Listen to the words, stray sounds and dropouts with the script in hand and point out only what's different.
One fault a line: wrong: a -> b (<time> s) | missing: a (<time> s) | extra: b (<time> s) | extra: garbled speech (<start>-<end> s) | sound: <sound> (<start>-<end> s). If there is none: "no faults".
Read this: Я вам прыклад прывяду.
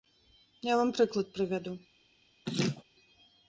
sound: laugh (2.5-2.8 s)